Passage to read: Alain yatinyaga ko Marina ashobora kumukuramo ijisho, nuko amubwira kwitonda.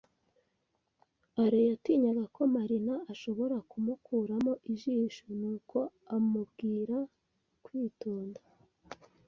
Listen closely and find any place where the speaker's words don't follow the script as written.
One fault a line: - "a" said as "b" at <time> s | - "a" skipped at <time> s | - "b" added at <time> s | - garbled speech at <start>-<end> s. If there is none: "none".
none